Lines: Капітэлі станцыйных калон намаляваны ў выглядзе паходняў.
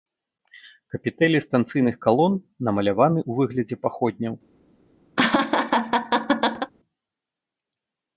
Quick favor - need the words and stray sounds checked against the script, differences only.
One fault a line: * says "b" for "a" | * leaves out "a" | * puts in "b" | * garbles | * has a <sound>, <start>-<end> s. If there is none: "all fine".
* has a laugh, 5.2-6.7 s